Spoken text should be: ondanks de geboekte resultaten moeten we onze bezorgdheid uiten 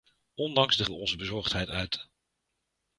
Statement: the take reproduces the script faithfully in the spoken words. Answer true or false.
false